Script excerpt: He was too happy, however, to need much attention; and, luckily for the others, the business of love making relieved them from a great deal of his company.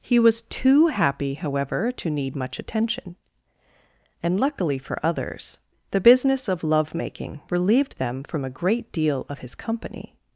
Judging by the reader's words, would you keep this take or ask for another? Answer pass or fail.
fail